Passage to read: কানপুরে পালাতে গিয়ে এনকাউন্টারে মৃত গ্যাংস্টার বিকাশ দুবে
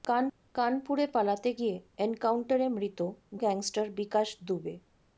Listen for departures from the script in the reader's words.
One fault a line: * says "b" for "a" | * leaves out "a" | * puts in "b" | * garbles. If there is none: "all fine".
all fine